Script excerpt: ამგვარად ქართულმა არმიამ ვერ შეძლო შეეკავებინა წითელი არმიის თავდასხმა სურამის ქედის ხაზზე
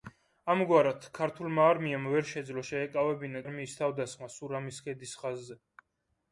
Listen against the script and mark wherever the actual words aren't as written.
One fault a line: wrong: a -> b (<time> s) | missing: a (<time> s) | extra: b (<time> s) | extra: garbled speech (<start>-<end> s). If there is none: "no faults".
missing: წითელი (3.4 s)